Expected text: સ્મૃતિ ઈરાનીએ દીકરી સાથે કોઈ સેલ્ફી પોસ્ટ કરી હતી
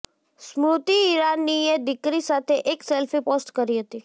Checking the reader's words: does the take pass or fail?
fail